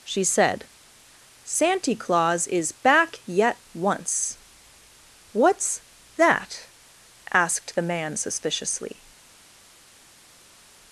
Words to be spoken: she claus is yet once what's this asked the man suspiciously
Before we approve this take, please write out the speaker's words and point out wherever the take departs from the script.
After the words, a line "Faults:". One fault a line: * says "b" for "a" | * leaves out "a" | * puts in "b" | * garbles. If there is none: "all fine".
she said santy claus is back yet once what's that asked the man suspiciously
Faults:
* puts in "said santy"
* puts in "back"
* says "that" for "this"